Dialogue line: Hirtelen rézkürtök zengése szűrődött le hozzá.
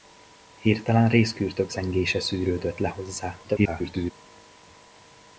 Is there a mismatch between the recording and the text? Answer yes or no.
yes